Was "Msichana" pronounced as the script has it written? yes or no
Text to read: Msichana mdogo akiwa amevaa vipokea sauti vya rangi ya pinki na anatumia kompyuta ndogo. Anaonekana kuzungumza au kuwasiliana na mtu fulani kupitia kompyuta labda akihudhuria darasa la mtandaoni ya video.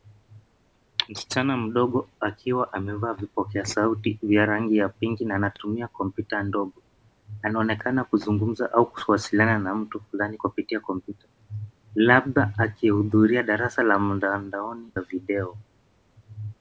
yes